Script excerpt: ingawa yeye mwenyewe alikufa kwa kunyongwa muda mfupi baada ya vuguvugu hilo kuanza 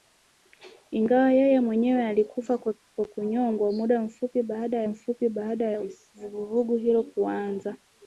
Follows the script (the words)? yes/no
no